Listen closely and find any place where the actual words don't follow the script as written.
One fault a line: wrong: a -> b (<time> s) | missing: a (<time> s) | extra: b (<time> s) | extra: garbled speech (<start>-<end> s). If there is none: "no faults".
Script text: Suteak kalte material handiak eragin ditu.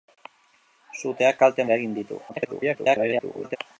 missing: material handiak (1.7 s)
extra: garbled speech (2.3-3.6 s)